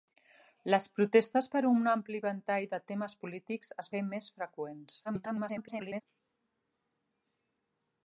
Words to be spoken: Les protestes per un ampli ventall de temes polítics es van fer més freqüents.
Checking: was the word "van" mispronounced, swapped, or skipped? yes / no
yes